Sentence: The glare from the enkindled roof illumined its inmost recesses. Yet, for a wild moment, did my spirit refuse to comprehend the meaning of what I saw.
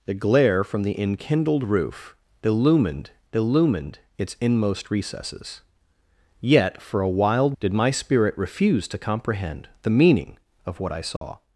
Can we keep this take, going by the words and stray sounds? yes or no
no